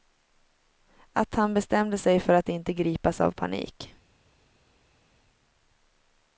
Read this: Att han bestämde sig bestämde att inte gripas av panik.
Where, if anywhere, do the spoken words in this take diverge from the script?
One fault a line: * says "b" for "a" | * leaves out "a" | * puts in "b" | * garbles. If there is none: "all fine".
* says "för" for "bestämde"